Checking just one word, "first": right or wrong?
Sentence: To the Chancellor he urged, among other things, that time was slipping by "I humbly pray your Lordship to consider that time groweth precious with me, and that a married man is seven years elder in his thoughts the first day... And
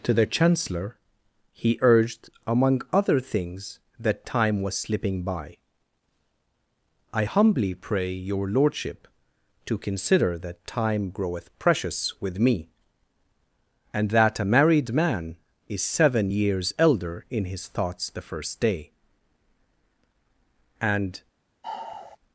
right